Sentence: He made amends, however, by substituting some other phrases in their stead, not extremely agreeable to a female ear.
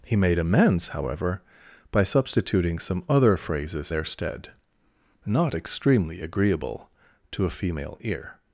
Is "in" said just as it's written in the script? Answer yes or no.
no